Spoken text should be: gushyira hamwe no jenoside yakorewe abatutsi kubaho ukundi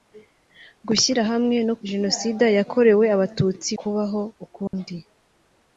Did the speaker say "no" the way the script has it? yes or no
yes